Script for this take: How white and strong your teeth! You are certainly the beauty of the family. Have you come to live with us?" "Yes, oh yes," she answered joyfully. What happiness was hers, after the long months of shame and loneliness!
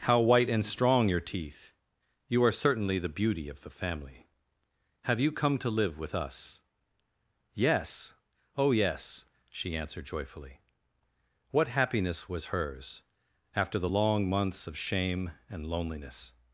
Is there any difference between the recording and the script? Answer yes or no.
no